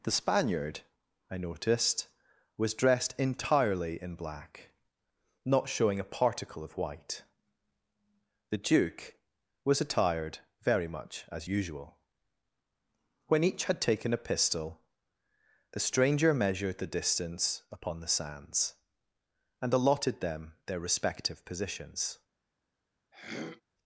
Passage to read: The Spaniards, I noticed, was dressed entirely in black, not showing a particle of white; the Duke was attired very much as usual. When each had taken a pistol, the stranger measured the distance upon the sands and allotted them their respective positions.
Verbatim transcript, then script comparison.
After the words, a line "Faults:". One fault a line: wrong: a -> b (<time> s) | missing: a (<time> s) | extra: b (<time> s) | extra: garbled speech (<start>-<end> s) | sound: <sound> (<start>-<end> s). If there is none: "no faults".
The Spaniard, I noticed, was dressed entirely in black, not showing a particle of white; the Duke was attired very much as usual. When each had taken a pistol, the stranger measured the distance upon the sands and allotted them their respective positions.
Faults:
wrong: Spaniards -> Spaniard (0.1 s)
sound: throat clearing (23.1-23.6 s)